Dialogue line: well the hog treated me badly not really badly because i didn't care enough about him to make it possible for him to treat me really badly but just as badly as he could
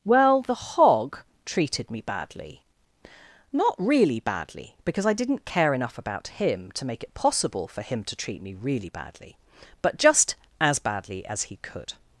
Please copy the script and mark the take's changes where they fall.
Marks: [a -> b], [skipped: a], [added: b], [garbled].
well the hog treated me badly not really badly because i didn't care enough about him to make it possible for him to treat me really badly but just as badly as he could